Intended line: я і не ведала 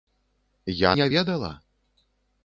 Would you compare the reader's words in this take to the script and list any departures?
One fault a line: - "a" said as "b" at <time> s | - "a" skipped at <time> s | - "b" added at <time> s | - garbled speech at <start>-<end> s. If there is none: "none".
none